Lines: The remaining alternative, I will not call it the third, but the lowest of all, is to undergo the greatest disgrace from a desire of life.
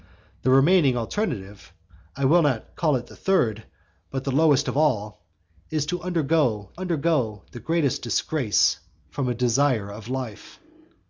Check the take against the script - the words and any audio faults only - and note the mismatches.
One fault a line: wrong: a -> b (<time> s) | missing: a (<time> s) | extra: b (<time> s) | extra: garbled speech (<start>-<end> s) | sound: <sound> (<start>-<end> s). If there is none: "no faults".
extra: undergo (6.7 s)